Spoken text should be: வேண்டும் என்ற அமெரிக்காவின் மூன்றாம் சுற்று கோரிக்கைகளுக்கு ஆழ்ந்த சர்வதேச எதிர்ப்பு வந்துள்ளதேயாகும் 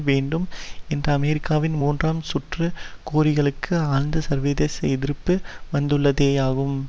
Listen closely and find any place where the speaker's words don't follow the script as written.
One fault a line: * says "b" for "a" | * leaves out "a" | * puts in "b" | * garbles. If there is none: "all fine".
all fine